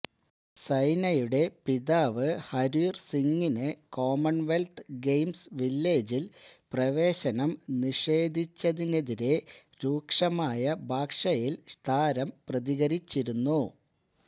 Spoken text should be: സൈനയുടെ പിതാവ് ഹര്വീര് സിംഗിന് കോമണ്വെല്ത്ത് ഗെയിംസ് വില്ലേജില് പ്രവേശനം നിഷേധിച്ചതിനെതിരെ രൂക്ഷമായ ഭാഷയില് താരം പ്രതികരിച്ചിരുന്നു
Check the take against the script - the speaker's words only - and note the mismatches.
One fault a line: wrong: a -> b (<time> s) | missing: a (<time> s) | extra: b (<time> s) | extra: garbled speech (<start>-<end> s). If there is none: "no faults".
no faults